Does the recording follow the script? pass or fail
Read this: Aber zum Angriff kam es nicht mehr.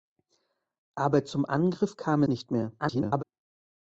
fail